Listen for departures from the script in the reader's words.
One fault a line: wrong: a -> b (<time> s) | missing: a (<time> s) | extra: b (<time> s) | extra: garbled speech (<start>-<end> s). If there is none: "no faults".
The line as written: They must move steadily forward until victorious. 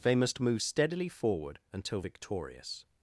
no faults